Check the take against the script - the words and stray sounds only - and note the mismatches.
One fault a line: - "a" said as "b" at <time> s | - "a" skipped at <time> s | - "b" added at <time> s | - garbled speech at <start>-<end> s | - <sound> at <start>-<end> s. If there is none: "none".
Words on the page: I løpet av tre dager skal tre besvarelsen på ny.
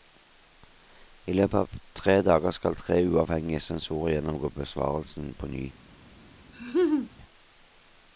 - "uavhengige sensorer gjennomgå" added at 3.1 s
- laugh at 6.5-7.1 s